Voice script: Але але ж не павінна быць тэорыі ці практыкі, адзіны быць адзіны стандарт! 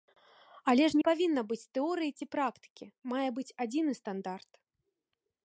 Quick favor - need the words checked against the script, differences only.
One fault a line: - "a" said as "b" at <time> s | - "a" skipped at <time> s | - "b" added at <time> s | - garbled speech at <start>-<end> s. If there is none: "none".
- "але" skipped at 0.9 s
- "адзіны" said as "мае" at 3.1 s